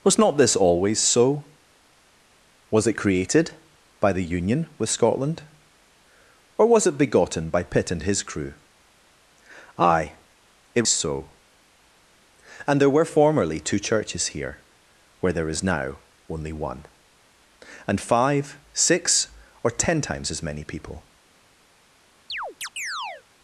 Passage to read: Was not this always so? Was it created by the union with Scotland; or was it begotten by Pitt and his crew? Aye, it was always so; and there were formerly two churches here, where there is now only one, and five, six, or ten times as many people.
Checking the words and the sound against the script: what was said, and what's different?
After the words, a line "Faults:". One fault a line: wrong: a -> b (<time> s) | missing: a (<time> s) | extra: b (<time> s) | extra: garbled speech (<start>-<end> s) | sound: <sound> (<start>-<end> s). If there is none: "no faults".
Was not this always so? Was it created by the union with Scotland; or was it begotten by Pitt and his crew? Aye, it so; and there were formerly two churches here, where there is now only one, and five, six, or ten times as many people.
Faults:
missing: was always (10.8 s)
sound: chirp (22.3-23.2 s)